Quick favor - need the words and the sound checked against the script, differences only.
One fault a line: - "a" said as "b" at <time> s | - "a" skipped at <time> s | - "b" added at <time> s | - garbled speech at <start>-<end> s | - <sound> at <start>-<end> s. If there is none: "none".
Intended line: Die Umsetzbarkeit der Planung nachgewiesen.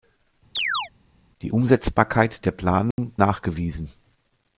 - chirp at 0.6-0.9 s
- dropout at 2.9-3.0 s